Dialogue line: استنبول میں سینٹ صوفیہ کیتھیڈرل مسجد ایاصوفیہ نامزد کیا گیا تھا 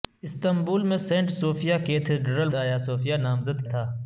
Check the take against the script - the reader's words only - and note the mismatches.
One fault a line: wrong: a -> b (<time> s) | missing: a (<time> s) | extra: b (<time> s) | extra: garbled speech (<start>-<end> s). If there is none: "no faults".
missing: مسجد (2.5 s)
missing: کیا گیا (3.7 s)